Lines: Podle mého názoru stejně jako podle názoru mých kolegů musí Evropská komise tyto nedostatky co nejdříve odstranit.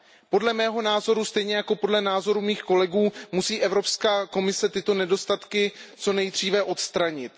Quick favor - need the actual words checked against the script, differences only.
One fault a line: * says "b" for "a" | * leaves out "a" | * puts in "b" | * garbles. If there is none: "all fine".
all fine